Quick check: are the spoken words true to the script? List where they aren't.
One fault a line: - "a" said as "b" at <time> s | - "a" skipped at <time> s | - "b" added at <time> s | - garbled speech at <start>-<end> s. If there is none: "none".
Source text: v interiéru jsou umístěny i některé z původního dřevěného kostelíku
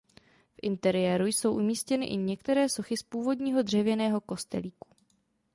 - "sochy" added at 2.7 s